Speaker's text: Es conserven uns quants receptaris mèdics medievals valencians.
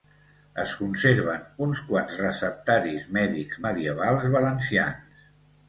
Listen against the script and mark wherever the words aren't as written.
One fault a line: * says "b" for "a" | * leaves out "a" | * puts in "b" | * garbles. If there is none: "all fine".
all fine